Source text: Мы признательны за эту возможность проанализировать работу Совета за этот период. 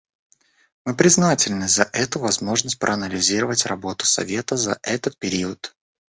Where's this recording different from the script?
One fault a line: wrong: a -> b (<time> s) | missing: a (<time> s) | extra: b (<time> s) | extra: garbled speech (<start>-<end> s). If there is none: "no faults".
no faults